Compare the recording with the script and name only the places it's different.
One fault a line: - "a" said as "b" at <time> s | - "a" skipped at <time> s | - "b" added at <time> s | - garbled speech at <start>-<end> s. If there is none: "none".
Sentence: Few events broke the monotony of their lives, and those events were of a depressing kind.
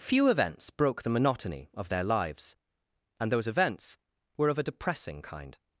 none